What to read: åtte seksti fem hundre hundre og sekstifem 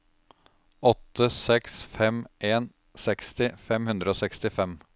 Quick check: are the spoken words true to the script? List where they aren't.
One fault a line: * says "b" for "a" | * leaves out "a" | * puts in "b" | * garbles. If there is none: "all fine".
* puts in "seks fem en"
* leaves out "hundre"